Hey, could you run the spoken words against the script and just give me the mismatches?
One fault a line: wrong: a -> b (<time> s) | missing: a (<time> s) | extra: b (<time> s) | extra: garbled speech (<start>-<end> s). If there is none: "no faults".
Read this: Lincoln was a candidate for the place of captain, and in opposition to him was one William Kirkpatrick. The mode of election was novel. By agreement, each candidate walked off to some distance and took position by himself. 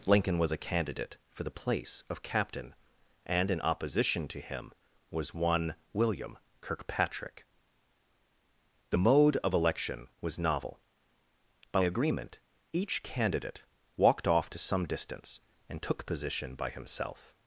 no faults